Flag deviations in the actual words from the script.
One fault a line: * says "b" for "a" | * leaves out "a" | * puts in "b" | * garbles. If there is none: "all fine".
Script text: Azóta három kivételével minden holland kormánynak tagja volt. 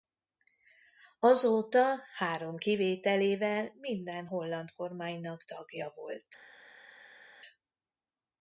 all fine